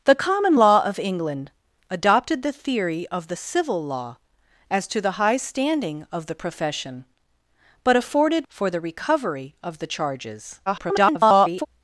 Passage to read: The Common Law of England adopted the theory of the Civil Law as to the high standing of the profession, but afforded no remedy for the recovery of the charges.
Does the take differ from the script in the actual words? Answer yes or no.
yes